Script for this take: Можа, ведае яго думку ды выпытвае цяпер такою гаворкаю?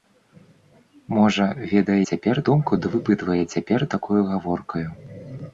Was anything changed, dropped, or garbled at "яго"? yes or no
yes